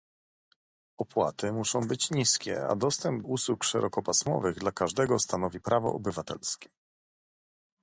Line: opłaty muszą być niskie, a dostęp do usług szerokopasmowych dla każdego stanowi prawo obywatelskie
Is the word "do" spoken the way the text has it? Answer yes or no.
no